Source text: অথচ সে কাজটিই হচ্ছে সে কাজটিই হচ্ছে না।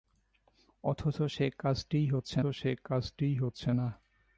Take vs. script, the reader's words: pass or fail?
pass